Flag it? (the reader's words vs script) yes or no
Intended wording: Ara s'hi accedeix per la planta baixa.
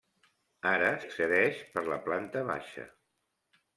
yes